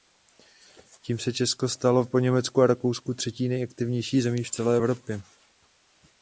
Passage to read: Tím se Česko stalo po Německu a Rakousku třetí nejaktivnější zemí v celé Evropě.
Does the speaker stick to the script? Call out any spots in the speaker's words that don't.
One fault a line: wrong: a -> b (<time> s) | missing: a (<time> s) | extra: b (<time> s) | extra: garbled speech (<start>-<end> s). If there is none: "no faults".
no faults